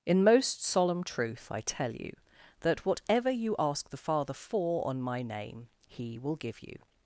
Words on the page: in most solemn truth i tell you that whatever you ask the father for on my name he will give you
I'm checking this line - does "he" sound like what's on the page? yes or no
yes